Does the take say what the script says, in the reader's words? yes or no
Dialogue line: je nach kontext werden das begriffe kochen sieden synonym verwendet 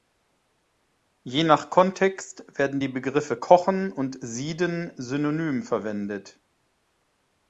no